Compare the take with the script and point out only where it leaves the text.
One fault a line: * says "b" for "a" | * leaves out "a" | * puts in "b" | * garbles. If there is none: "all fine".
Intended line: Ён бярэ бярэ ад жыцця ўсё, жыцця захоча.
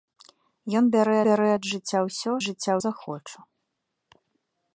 all fine